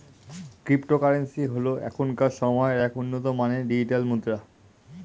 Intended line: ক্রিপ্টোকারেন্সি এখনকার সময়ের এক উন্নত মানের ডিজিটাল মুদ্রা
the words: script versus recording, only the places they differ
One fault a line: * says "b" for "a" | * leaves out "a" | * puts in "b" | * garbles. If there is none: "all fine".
* puts in "হল"